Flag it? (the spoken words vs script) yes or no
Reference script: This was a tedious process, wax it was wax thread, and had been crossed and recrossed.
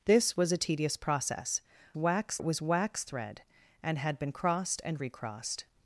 no